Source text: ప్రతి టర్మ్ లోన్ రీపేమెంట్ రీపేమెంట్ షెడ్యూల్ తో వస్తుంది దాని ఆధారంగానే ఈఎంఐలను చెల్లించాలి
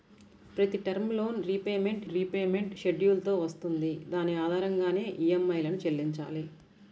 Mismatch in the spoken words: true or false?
false